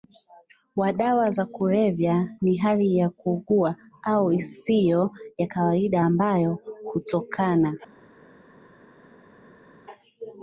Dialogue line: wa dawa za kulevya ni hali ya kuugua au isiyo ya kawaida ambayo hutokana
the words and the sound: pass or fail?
pass